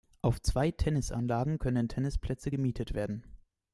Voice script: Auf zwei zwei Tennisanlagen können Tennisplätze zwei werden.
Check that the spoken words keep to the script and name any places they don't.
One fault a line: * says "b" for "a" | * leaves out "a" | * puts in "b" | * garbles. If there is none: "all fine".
* leaves out "zwei"
* says "gemietet" for "zwei"